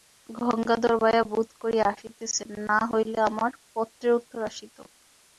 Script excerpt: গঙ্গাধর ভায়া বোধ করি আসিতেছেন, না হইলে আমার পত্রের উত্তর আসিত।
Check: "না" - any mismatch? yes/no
no